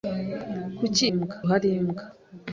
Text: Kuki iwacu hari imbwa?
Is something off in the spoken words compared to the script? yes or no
yes